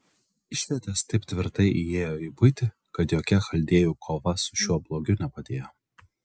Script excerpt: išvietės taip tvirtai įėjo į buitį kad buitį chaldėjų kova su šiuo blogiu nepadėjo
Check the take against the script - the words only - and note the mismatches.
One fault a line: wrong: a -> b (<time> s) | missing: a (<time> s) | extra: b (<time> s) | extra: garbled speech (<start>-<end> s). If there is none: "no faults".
wrong: buitį -> jokia (3.2 s)